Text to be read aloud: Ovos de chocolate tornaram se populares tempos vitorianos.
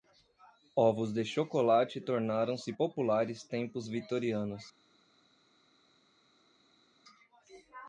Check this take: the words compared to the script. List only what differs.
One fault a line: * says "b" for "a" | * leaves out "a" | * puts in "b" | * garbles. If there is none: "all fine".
all fine